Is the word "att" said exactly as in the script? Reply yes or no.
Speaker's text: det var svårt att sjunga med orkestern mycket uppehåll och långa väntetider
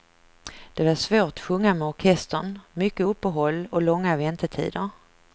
no